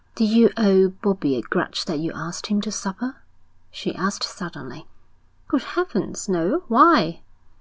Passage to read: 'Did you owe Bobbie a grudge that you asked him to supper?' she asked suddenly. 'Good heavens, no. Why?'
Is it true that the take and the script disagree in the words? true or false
false